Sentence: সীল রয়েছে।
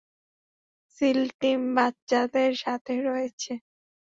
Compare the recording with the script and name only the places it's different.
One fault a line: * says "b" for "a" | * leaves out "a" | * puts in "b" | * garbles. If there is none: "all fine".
* puts in "টিম বাচ্চাদের সাথে"